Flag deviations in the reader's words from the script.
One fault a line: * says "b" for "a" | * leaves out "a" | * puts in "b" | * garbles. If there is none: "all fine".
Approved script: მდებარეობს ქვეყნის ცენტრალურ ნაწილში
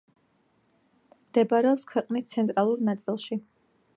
all fine